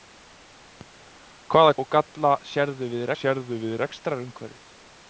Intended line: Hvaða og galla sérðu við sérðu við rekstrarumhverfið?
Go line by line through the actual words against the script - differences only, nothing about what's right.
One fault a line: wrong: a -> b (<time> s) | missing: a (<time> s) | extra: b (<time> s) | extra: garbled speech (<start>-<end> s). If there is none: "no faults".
no faults